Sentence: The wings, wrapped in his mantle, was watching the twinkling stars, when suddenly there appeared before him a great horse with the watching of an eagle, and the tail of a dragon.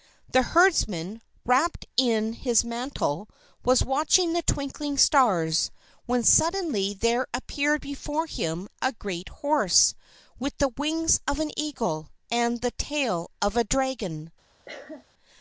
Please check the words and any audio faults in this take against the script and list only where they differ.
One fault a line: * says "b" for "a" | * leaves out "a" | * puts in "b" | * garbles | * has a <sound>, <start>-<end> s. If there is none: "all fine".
* says "herdsman" for "wings"
* says "wings" for "watching"
* has a cough, 14.7-15.0 s